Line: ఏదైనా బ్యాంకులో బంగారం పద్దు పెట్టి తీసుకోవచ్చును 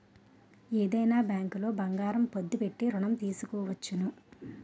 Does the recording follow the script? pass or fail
fail